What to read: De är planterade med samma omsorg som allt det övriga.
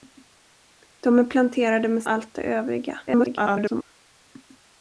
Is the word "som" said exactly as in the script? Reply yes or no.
no